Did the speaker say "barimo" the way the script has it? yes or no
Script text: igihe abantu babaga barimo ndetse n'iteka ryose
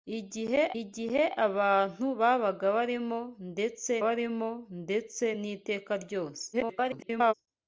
yes